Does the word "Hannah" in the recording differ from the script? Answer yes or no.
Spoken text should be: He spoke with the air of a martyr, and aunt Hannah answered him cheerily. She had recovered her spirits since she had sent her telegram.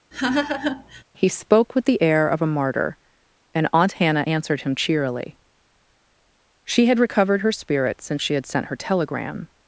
no